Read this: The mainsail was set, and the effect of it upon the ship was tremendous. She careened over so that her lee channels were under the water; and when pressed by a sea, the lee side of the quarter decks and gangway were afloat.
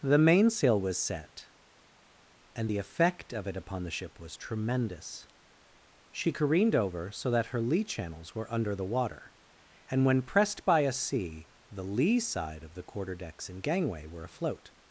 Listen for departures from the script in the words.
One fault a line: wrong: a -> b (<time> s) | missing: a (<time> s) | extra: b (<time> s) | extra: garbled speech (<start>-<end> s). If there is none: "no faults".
no faults